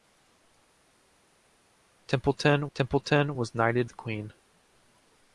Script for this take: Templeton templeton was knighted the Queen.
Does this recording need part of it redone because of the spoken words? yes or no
no